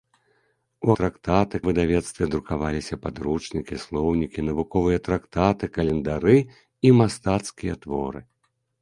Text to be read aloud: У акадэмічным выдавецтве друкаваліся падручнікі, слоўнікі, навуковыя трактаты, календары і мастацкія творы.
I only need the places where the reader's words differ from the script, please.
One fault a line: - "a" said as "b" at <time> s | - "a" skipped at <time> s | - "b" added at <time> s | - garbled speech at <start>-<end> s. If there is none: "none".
- "акадэмічным" said as "трактаты" at 1.0 s